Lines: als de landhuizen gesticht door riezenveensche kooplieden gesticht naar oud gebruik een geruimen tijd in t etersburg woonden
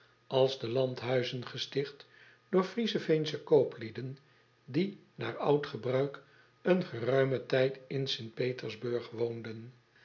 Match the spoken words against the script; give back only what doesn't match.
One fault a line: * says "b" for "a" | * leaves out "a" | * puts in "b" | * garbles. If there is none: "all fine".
* says "die" for "gesticht"